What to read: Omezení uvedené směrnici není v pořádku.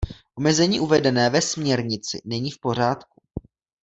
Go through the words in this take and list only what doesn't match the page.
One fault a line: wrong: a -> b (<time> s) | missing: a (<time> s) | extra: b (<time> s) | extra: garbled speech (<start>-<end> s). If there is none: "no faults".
extra: ve (1.3 s)